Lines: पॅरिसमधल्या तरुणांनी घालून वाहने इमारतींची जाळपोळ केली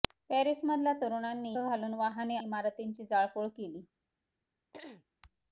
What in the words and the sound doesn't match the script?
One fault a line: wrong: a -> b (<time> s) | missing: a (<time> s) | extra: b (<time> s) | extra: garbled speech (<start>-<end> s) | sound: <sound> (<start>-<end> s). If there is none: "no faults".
sound: throat clearing (4.7-5.1 s)